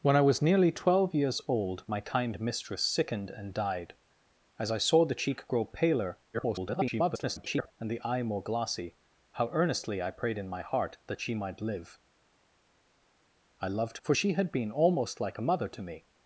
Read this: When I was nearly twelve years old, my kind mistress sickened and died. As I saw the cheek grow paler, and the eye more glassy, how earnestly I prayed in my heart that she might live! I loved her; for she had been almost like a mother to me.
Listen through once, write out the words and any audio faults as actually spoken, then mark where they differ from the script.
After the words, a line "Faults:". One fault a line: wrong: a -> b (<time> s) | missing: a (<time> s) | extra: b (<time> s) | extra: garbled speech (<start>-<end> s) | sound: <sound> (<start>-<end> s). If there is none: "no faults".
When I was nearly twelve years old, my kind mistress sickened and died. As I saw the cheek grow paler, [garbled] and the eye more glassy, how earnestly I prayed in my heart that she might live! I loved; for she had been almost like a mother to me.
Faults:
extra: garbled speech (6.3-7.7 s)
missing: her (14.0 s)